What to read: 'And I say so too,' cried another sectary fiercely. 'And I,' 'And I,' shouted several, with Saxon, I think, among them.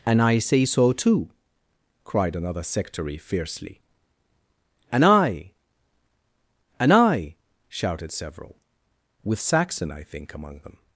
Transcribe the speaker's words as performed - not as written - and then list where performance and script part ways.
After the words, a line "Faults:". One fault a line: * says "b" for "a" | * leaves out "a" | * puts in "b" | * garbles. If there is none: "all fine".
'And I say so too,' cried another sectary fiercely. 'And I,' 'And I,' shouted several, with Saxon, I think, among them.
Faults:
all fine